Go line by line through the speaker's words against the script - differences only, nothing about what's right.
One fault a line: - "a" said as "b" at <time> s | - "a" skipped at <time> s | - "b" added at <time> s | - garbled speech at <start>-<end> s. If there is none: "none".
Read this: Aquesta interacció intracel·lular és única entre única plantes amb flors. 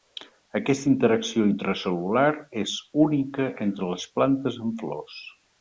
- "única" said as "les" at 4.0 s